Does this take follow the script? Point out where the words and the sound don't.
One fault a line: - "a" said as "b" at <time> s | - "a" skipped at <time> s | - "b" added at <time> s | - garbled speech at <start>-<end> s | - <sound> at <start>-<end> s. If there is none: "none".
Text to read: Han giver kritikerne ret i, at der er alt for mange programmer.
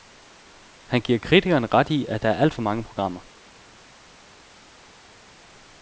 none